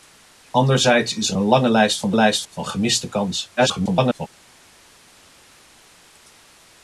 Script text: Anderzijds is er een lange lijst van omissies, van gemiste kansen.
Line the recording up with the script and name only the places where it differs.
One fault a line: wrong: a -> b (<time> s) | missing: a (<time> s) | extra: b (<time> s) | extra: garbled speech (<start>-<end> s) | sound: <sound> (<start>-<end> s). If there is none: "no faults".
wrong: omissies -> lijst (2.1 s)
extra: garbled speech (3.6-4.3 s)